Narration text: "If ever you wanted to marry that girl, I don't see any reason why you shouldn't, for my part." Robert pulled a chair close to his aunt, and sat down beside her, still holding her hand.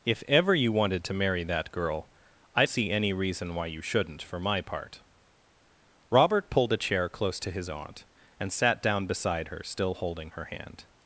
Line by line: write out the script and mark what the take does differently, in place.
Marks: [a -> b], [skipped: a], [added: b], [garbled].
"If ever you wanted to marry that girl, I [skipped: don't] see any reason why you shouldn't, for my part." Robert pulled a chair close to his aunt, and sat down beside her, still holding her hand.